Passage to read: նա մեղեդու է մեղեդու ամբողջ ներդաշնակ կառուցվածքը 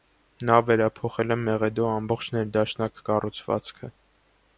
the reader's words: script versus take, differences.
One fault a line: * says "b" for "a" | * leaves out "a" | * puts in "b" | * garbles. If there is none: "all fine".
* says "վերափոխել" for "մեղեդու"